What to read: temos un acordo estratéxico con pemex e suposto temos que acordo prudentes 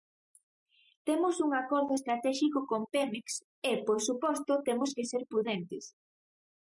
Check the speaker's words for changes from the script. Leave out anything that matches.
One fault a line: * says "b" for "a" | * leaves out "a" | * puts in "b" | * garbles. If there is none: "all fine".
* puts in "por"
* says "ser" for "acordo"